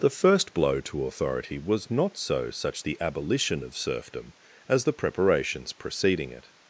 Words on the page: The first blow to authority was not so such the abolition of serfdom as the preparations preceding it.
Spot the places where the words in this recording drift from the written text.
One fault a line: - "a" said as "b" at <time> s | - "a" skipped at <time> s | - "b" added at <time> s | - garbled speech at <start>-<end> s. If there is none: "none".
none